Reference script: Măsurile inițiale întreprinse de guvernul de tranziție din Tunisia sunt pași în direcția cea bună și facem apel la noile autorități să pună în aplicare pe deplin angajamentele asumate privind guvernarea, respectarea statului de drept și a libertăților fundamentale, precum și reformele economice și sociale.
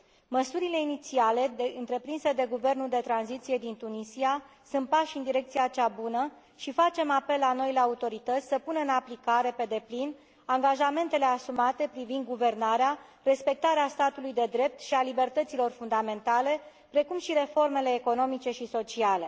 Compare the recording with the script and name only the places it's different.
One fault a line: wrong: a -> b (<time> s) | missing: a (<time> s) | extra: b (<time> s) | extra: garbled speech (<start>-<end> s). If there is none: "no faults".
no faults